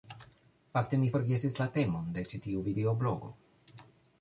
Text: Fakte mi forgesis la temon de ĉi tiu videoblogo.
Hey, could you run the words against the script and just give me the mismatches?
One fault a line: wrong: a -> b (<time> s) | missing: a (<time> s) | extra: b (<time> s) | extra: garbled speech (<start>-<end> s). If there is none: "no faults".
no faults